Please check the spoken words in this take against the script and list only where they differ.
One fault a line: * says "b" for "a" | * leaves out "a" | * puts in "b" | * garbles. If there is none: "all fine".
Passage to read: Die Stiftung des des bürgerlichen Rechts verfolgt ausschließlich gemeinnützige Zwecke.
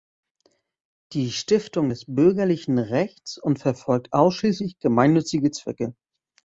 * leaves out "des"
* puts in "und"